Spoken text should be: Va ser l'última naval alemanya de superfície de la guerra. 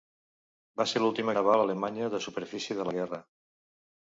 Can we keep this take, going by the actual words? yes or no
yes